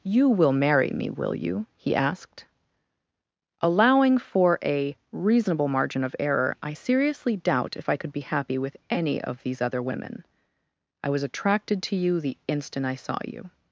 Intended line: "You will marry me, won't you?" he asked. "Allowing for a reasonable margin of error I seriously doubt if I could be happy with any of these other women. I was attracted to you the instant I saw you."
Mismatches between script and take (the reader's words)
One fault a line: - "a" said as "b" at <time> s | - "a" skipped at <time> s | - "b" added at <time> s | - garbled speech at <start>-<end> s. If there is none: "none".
- "won't" said as "will" at 1.1 s